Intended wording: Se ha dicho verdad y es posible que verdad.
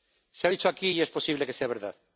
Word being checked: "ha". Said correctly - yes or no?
yes